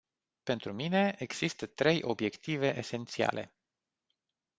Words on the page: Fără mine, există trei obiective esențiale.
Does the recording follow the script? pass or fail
fail